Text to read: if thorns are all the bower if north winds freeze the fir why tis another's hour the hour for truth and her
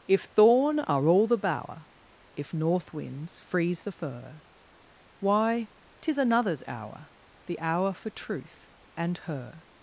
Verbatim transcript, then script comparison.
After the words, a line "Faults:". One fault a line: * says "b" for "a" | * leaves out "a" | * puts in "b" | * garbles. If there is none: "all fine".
if thorn are all the bower if north winds freeze the fir why tis another's hour the hour for truth and her
Faults:
* says "thorn" for "thorns"